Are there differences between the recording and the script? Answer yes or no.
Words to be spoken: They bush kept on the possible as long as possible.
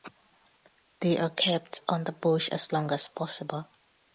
yes